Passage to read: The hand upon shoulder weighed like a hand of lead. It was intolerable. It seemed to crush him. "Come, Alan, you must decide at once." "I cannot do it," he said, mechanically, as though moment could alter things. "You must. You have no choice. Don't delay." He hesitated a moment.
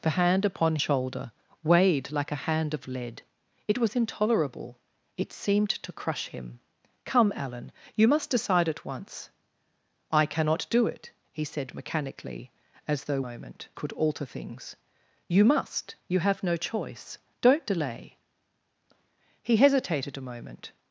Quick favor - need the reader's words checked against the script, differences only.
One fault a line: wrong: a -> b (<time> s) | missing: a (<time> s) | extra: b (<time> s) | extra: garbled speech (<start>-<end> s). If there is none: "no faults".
no faults